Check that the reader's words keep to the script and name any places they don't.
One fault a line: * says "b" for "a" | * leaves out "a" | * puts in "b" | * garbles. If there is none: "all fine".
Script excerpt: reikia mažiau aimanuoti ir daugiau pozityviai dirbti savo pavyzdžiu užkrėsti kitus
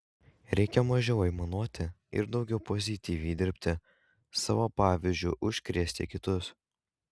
all fine